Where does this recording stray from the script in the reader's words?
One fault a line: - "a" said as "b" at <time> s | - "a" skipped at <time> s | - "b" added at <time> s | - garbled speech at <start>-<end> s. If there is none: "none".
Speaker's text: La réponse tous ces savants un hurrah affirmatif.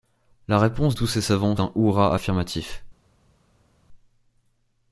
none